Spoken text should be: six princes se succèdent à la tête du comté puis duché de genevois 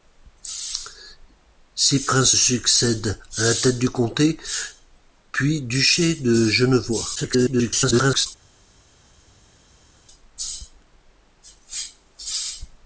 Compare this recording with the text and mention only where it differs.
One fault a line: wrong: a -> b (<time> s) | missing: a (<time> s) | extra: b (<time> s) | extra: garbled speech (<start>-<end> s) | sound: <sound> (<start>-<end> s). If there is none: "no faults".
missing: se (2.3 s)
extra: garbled speech (7.2-8.3 s)